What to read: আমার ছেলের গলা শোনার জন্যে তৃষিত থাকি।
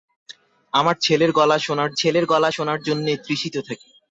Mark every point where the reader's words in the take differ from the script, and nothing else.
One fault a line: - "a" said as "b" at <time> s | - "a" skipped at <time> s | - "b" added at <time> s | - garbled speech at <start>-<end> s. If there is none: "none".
- "ছেলের গলা শোনার" added at 2.0 s